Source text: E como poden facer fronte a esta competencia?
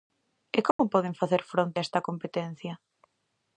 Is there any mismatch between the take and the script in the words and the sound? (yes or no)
yes